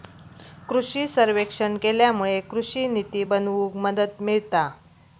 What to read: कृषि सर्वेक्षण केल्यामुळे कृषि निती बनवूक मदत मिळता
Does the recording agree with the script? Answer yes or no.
yes